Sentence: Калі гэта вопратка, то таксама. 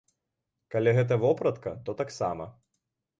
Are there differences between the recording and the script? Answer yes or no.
no